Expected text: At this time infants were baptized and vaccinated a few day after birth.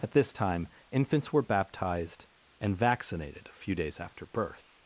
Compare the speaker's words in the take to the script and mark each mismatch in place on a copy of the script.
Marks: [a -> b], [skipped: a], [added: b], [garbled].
At this time infants were baptized and vaccinated a few [day -> days] after birth.